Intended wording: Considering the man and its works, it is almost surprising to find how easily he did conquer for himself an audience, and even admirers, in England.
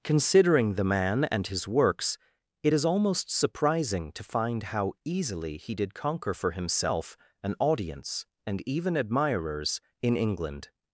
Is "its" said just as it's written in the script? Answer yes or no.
no